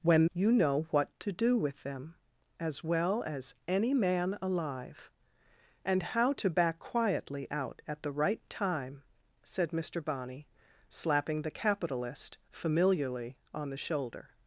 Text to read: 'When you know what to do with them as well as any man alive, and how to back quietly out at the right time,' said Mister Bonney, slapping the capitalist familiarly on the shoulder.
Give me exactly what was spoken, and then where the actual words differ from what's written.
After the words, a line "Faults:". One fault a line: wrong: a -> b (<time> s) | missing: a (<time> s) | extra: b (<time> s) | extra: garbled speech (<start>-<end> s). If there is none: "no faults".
'When you know what to do with them as well as any man alive, and how to back quietly out at the right time,' said Mister Bonney, slapping the capitalist familiarly on the shoulder.
Faults:
no faults